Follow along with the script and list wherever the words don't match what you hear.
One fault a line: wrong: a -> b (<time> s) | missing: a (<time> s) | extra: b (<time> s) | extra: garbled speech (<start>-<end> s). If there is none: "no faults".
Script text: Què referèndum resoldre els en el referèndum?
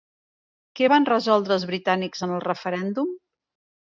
wrong: referèndum -> van (0.9 s)
extra: britànics (1.7 s)